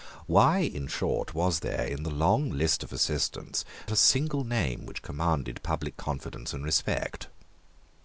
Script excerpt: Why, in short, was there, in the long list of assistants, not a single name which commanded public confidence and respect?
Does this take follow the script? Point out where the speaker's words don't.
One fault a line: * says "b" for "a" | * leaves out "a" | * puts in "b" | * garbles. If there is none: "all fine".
* leaves out "not"